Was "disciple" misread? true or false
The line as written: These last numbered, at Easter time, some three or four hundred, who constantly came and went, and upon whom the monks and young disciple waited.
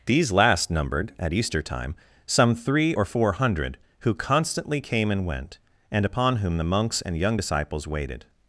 true